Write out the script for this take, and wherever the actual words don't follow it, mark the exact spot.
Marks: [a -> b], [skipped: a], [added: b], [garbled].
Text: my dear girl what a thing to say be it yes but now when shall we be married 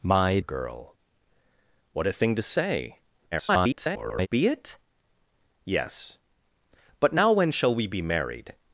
my [skipped: dear] girl what a thing to say [garbled] be it yes but now when shall we be married